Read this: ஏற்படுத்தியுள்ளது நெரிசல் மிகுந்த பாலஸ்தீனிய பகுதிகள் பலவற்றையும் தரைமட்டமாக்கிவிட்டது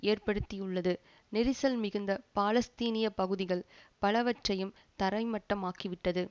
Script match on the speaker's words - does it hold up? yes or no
yes